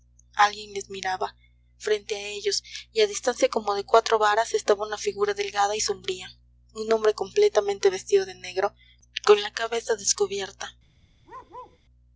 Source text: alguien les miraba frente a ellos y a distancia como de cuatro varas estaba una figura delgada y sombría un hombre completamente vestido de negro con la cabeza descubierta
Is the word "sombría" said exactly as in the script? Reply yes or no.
yes